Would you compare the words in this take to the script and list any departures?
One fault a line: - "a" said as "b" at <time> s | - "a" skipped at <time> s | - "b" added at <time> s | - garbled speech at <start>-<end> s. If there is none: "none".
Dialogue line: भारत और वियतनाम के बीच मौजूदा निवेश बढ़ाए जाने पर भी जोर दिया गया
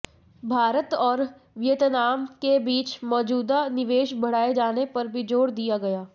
none